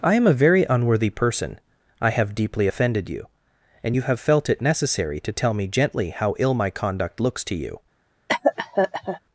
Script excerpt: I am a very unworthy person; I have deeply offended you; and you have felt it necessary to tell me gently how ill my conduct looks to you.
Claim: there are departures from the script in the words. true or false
false